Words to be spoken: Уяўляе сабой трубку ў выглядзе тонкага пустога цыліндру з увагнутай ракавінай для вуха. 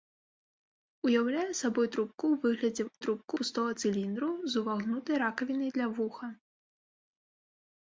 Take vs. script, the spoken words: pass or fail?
fail